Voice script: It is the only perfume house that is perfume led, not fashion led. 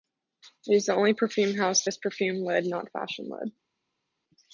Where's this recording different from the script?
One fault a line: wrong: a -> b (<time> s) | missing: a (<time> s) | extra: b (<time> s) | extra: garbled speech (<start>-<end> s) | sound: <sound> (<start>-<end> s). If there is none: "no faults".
missing: that (1.9 s)